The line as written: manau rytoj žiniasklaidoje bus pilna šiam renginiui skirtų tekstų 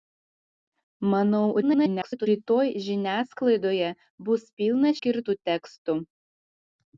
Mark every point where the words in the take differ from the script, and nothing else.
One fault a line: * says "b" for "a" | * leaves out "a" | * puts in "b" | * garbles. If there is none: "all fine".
* garbles
* leaves out "šiam renginiui"